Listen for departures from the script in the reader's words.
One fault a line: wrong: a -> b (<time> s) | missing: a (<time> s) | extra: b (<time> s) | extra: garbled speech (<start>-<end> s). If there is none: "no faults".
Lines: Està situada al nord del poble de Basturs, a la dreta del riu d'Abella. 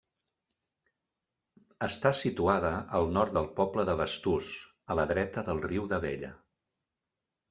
no faults